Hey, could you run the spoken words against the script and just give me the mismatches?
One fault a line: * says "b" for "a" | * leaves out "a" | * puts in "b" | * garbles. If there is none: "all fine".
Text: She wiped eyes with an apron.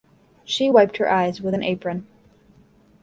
* puts in "her"